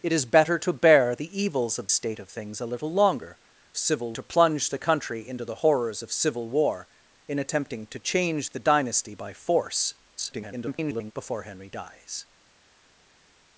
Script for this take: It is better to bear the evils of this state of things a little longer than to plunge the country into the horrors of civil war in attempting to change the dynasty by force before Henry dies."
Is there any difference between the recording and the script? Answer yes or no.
yes